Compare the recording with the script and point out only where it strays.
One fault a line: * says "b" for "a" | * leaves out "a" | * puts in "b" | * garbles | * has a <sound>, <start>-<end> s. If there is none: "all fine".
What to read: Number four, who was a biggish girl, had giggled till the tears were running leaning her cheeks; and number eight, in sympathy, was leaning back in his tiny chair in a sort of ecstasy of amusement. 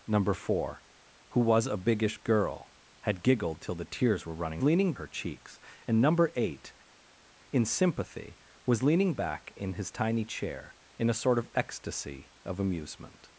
all fine